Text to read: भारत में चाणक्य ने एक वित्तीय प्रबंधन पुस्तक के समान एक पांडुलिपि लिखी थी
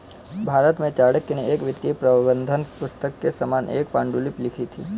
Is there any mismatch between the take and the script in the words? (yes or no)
no